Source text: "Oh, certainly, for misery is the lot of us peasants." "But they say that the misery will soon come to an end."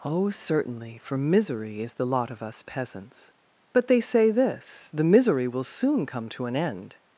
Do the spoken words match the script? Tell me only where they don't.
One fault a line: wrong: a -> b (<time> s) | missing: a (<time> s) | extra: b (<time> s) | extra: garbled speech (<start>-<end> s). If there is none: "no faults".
wrong: that -> this (4.3 s)